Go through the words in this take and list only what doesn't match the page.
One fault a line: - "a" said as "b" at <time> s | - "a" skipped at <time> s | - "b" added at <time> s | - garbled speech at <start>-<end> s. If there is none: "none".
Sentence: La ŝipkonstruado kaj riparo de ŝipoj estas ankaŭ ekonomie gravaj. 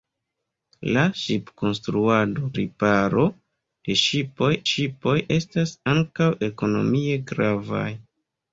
- "kaj" skipped at 2.5 s
- "ŝipoj" added at 4.7 s